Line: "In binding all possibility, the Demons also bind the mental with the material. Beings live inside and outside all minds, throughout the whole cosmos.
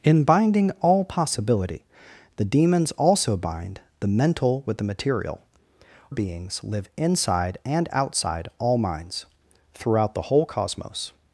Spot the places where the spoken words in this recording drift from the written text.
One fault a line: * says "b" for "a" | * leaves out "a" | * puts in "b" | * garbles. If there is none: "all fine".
all fine